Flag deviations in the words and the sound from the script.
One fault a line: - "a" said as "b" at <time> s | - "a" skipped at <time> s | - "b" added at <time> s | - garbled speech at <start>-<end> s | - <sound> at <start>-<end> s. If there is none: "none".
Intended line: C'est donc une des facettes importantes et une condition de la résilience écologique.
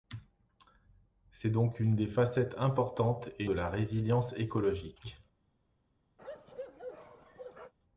- "une condition" skipped at 3.5 s
- bark at 6.2-7.7 s